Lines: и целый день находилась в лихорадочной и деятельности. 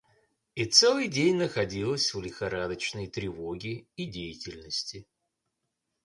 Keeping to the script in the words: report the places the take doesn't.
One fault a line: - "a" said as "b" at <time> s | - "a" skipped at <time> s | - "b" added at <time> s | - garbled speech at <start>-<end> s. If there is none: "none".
- "тревоге" added at 3.1 s